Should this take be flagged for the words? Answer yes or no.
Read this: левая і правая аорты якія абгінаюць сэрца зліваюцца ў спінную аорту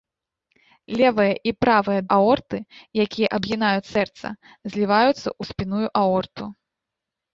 no